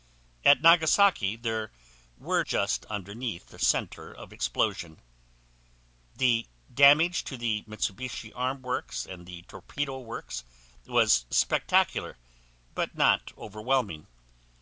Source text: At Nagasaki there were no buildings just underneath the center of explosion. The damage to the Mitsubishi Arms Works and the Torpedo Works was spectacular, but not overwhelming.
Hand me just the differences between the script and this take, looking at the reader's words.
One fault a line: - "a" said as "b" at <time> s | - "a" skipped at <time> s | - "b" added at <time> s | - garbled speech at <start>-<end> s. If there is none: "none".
- "no buildings" skipped at 2.4 s